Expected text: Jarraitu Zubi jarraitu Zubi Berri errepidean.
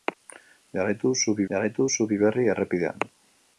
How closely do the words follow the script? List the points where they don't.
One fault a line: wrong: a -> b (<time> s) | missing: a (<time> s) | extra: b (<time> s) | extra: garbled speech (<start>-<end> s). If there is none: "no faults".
no faults